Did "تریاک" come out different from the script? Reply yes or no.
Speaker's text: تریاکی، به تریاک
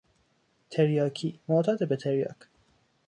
no